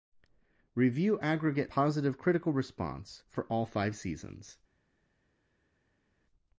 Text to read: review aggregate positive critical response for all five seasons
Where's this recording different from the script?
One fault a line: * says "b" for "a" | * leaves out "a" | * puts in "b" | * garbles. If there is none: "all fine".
all fine